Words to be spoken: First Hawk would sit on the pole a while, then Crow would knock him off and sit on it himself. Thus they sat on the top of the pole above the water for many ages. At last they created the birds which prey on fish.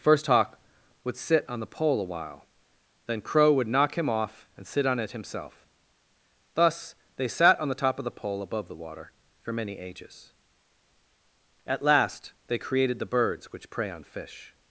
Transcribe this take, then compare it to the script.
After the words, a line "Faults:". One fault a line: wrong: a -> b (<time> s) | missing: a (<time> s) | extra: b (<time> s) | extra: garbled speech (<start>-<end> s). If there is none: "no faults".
First Hawk would sit on the pole a while, then Crow would knock him off and sit on it himself. Thus they sat on the top of the pole above the water for many ages. At last they created the birds which prey on fish.
Faults:
no faults